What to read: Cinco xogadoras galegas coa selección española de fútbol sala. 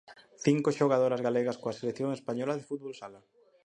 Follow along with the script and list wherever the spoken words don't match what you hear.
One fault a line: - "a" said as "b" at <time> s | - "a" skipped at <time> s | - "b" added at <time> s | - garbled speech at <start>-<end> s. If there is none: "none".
none